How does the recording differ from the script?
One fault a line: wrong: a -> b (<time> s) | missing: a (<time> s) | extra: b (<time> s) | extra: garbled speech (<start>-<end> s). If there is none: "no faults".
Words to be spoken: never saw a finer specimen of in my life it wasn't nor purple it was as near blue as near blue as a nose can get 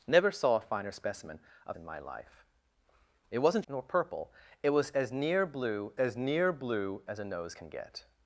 no faults